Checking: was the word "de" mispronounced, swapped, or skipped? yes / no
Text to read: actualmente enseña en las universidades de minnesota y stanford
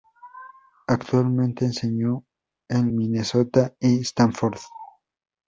yes